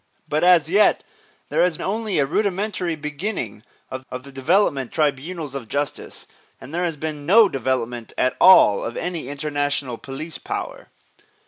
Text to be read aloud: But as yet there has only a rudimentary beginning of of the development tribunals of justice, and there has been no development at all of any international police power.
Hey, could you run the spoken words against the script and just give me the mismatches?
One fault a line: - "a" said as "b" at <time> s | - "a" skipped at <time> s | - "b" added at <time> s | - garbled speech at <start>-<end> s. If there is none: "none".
none